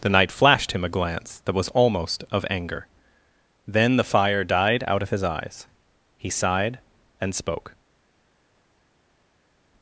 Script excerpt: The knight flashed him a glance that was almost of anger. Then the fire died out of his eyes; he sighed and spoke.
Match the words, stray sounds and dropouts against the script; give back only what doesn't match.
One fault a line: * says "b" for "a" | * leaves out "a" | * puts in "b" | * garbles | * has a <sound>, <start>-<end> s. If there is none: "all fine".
all fine